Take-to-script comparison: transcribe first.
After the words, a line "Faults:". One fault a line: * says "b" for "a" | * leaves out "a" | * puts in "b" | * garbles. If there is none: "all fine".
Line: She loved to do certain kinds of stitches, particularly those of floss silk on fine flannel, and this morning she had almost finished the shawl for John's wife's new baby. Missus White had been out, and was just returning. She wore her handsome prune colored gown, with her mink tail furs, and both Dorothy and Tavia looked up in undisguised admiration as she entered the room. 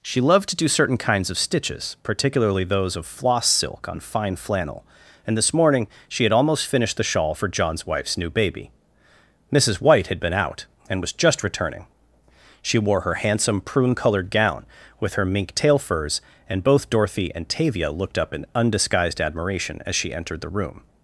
She loved to do certain kinds of stitches, particularly those of floss silk on fine flannel, and this morning she had almost finished the shawl for John's wife's new baby. Missus White had been out, and was just returning. She wore her handsome prune colored gown, with her mink tail furs, and both Dorothy and Tavia looked up in undisguised admiration as she entered the room.
Faults:
all fine